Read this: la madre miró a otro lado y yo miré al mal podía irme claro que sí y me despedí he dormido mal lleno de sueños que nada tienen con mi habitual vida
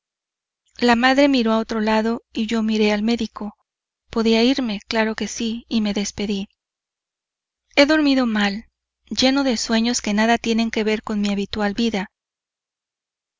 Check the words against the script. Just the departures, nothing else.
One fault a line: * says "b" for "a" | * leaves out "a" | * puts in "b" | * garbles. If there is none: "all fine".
* says "médico" for "mal"
* puts in "que ver"